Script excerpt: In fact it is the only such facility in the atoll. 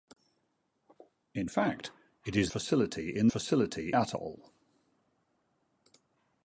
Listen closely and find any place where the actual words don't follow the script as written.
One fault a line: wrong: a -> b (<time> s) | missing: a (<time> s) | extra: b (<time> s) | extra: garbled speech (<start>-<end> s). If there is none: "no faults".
missing: the only such (2.5 s)
wrong: the -> facility (3.3 s)